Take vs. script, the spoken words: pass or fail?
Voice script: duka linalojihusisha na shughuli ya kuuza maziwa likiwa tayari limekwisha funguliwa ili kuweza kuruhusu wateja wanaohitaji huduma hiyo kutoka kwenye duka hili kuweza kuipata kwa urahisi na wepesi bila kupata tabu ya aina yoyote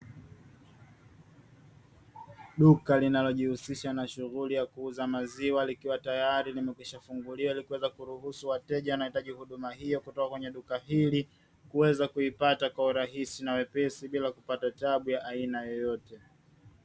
pass